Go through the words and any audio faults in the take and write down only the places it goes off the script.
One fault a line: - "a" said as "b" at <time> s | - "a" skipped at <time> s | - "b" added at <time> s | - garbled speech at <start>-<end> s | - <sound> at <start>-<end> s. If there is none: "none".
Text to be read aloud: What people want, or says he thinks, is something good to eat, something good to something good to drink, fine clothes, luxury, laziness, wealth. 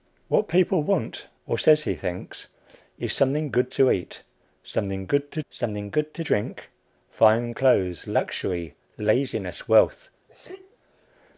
- sneeze at 10.3-10.8 s